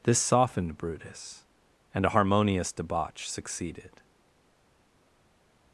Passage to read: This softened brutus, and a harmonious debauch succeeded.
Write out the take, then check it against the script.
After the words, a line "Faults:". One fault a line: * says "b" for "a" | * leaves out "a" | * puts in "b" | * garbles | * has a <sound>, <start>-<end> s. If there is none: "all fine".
This softened brutus, and a harmonious debauch succeeded.
Faults:
all fine